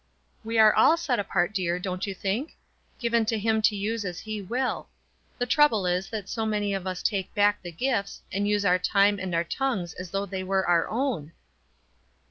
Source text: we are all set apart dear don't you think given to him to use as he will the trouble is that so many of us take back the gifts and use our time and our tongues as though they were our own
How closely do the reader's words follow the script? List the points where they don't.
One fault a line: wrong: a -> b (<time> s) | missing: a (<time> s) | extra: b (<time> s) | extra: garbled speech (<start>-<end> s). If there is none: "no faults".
no faults